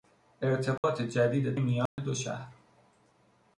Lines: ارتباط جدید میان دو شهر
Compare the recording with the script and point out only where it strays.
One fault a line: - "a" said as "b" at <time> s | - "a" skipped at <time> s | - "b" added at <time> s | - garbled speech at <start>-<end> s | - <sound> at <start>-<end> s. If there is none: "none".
- dropout at 0.8-0.8 s
- dropout at 1.9-2.0 s